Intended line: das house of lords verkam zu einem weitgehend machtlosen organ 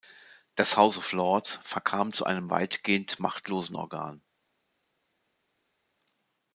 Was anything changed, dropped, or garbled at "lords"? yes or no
no